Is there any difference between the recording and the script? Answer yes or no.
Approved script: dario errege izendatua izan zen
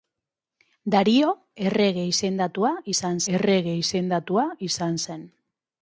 yes